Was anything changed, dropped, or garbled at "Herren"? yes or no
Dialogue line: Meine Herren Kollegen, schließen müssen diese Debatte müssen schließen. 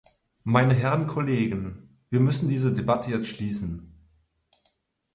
no